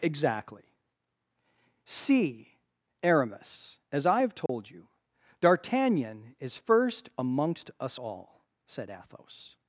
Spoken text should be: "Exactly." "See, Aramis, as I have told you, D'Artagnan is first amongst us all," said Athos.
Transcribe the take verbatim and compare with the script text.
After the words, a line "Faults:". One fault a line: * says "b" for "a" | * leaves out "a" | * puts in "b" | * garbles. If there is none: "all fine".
"Exactly." "See, Aramis, as I have told you, D'Artagnan is first amongst us all," said Athos.
Faults:
all fine